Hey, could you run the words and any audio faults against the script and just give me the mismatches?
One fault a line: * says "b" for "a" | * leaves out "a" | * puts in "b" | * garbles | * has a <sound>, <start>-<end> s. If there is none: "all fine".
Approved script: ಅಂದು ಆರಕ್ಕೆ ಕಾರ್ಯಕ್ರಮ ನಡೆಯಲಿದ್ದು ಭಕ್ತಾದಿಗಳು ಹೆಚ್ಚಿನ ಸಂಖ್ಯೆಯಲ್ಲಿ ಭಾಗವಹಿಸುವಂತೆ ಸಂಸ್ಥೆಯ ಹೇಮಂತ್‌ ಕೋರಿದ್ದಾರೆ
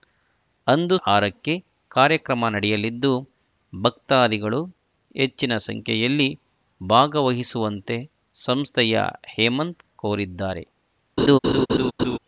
* has a laugh, 11.2-12.2 s